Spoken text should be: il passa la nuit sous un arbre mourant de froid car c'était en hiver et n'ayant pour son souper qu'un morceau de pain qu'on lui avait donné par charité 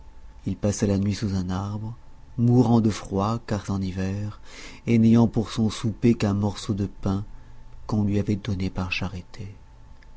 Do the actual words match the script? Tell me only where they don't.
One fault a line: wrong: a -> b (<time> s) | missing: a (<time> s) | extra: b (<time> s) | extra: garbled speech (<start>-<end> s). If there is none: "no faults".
missing: c'était (3.7 s)